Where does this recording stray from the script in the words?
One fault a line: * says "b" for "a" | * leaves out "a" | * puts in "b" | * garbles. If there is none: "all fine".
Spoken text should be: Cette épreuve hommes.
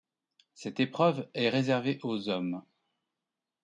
* puts in "est réservée aux"